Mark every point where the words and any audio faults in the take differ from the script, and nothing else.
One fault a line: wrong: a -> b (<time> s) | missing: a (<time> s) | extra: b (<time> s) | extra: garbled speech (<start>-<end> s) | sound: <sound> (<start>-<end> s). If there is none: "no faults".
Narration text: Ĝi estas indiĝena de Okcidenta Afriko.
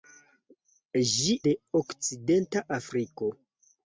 missing: estas indiĝena (1.3 s)